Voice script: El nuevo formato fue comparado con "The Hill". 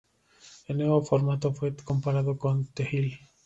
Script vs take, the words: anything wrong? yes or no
no